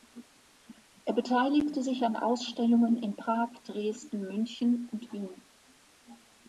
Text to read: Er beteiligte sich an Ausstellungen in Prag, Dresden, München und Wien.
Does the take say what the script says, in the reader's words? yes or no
yes